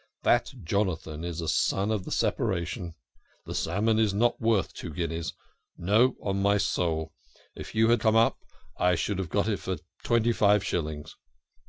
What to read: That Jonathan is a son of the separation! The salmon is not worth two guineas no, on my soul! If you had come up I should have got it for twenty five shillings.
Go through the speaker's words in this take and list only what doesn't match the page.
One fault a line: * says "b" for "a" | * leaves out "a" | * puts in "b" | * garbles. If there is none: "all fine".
all fine